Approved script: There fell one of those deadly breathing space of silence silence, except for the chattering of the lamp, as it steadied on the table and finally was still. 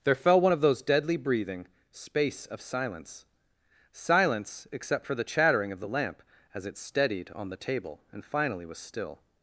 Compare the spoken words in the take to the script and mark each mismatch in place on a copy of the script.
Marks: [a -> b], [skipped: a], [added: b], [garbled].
There fell one of those deadly breathing space of silence silence, except for the chattering of the lamp, as it steadied on the table and finally was still.